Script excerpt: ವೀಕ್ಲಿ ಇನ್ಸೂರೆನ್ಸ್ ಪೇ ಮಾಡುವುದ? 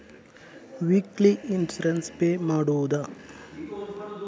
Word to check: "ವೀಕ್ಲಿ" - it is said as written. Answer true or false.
true